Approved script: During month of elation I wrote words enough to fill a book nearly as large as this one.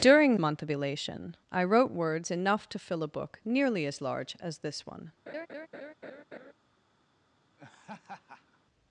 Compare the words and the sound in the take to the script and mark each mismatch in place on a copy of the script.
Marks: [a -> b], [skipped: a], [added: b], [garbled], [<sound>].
During month of elation I wrote words enough to fill a book nearly as large as this one. [laugh] [laugh]